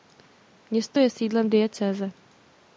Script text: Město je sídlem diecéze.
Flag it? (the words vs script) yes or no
no